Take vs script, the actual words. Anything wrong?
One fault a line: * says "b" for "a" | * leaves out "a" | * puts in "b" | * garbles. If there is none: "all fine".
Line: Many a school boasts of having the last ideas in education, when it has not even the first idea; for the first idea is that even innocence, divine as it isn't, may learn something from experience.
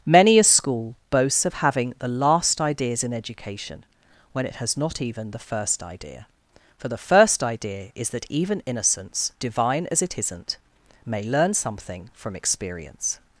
all fine